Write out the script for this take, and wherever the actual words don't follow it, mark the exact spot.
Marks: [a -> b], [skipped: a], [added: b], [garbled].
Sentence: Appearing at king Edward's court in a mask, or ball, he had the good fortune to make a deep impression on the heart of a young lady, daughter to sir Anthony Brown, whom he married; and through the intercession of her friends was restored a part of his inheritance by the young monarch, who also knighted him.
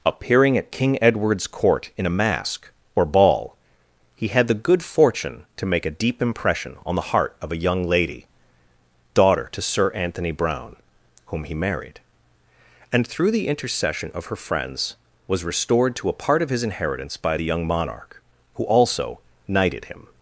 Appearing at king Edward's court in a mask, or ball, he had the good fortune to make a deep impression on the heart of a young lady, daughter to sir Anthony Brown, whom he married; and through the intercession of her friends was restored [added: to] a part of his inheritance by the young monarch, who also knighted him.